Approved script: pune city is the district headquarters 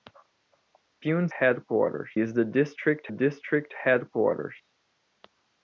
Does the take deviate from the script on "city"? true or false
true